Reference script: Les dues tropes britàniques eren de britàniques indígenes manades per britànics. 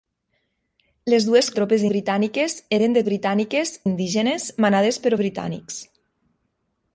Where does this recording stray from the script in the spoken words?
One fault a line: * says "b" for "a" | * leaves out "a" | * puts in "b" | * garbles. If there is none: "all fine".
all fine